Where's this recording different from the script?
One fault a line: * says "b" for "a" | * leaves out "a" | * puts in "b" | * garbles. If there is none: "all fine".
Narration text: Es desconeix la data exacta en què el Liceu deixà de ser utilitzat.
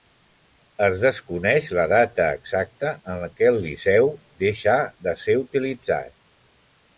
all fine